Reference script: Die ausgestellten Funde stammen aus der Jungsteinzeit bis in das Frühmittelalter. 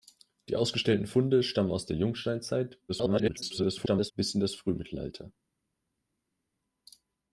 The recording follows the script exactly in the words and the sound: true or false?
false